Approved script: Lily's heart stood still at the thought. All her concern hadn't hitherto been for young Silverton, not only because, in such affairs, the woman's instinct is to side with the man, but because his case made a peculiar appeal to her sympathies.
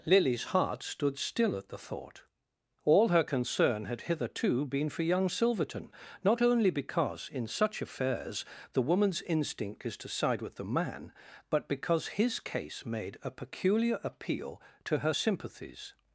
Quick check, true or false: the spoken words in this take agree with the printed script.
false